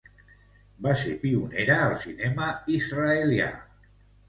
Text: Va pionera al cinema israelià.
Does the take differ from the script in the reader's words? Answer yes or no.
yes